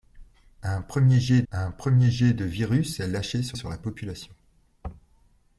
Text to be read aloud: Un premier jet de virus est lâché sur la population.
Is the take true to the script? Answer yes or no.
no